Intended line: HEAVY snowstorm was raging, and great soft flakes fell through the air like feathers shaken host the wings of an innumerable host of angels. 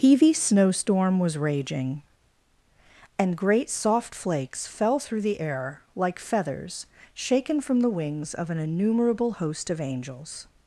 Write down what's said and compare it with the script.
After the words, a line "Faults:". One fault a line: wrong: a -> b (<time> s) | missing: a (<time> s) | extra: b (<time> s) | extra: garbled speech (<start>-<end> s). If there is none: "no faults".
HEAVY snowstorm was raging, and great soft flakes fell through the air like feathers shaken from the wings of an innumerable host of angels.
Faults:
wrong: host -> from (7.6 s)